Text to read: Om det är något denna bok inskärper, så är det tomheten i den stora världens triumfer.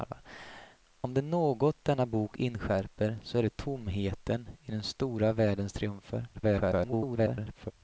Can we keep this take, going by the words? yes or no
no